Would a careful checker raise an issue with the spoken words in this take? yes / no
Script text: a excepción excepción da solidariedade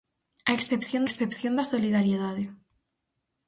no